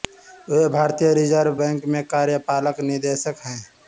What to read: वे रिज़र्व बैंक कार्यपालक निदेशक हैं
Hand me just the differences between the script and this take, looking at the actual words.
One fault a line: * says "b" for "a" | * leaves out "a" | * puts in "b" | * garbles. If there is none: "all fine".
* puts in "भारतीय"
* puts in "में"